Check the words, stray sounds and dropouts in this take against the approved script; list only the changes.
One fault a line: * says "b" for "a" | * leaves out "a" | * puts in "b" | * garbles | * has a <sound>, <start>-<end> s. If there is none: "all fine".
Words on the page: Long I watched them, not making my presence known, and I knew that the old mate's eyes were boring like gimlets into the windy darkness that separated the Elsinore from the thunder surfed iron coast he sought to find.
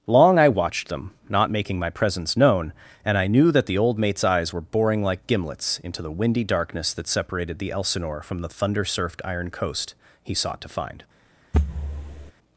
* has a thud, 11.5-12.3 s